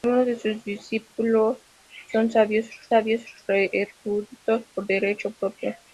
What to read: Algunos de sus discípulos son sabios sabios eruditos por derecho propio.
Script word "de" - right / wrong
right